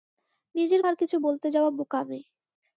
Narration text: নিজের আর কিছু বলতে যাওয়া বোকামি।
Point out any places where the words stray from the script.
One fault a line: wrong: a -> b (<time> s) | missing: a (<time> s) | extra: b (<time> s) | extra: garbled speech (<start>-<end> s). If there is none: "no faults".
no faults